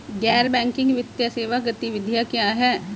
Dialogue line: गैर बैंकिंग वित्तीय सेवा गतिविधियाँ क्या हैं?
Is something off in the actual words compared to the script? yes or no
no